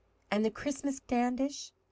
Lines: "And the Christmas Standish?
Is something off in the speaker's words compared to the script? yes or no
no